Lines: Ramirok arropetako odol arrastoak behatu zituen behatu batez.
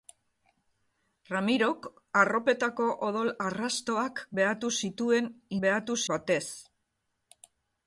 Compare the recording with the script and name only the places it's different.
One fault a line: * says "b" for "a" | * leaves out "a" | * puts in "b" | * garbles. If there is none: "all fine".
all fine